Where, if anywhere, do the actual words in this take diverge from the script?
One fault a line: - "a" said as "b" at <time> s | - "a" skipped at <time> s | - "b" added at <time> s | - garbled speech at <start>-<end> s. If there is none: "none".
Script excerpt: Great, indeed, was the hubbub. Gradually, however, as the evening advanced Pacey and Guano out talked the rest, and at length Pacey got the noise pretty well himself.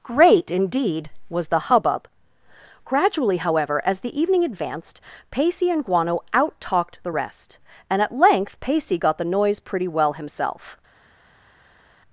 none